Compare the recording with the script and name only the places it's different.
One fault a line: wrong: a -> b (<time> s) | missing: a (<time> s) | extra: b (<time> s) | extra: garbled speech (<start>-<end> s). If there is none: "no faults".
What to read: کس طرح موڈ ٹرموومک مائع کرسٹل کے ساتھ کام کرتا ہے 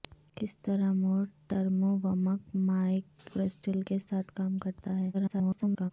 extra: garbled speech (5.1-5.9 s)